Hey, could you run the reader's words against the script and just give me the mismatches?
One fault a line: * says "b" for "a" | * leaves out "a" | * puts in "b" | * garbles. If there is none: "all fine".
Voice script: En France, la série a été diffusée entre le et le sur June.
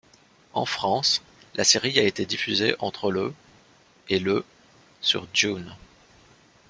all fine